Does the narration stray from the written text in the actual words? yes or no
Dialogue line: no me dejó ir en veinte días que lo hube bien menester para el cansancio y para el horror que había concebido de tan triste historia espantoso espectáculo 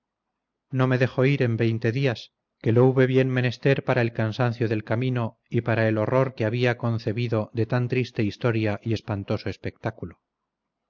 yes